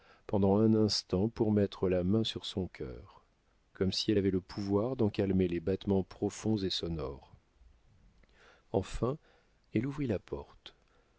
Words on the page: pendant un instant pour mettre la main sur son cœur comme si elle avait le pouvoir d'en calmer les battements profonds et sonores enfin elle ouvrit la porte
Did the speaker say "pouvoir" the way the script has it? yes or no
yes